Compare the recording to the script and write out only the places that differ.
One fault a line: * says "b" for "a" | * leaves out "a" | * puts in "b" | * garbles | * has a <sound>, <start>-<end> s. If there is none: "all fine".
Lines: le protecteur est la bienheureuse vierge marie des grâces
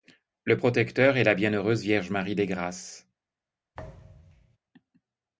* has a thud, 3.7-4.6 s